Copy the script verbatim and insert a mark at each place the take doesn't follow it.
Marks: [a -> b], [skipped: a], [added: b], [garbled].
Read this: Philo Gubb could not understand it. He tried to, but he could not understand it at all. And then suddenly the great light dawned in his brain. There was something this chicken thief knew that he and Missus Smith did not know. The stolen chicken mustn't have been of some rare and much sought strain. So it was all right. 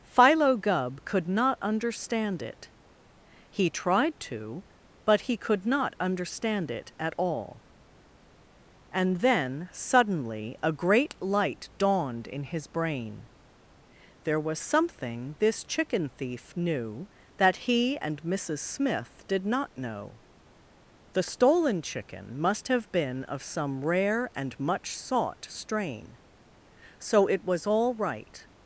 Philo Gubb could not understand it. He tried to, but he could not understand it at all. And then suddenly [the -> a] great light dawned in his brain. There was something this chicken thief knew that he and Missus Smith did not know. The stolen chicken [mustn't -> must] have been of some rare and much sought strain. So it was all right.